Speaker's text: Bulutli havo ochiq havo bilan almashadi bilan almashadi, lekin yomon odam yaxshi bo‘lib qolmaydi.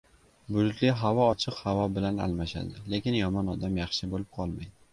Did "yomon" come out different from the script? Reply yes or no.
no